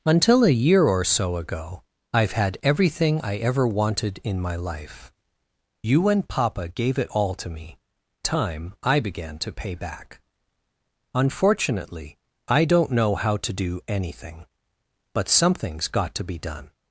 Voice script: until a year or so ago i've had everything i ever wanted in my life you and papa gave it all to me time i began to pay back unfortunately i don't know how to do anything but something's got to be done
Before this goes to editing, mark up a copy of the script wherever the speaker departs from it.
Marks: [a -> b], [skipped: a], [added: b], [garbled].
until a year or so ago i've had everything i ever wanted in my life you and papa gave it all to me time i began to pay back unfortunately i don't know how to do anything but something's got to be done